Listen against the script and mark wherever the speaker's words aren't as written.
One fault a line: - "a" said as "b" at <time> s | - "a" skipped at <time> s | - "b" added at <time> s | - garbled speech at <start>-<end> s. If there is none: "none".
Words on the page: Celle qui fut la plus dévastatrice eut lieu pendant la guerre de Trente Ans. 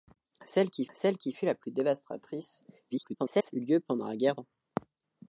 - "celle qui" added at 0.9 s
- garbled speech at 2.9-3.5 s
- "de Trente" skipped at 4.3 s